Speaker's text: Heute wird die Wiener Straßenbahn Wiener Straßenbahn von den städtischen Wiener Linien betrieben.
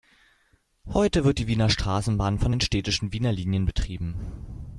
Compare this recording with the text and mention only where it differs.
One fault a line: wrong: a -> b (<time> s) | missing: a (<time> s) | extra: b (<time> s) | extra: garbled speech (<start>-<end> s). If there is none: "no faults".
missing: Wiener Straßenbahn (2.4 s)